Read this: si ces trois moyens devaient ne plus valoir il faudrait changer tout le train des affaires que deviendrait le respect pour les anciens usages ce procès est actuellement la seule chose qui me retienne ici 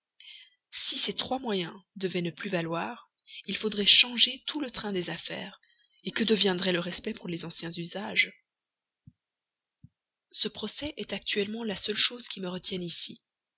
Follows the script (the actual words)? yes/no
yes